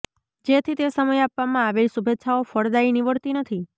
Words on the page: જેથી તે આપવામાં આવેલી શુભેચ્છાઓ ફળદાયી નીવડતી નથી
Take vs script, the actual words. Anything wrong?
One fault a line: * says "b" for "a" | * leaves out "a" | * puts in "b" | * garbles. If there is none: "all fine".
* puts in "સમયે"